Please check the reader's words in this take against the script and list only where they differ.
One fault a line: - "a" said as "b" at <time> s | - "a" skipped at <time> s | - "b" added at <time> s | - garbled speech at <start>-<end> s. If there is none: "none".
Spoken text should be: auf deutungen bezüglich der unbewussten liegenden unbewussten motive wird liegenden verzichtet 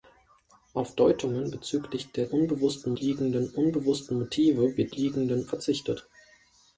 none